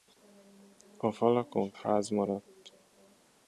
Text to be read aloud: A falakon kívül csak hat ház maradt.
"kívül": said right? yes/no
no